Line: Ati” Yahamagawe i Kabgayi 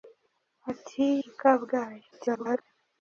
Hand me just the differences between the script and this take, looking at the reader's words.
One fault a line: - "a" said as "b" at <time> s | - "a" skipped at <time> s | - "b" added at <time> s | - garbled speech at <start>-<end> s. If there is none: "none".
- "Yahamagawe" skipped at 1.1 s
- garbled speech at 2.1-2.6 s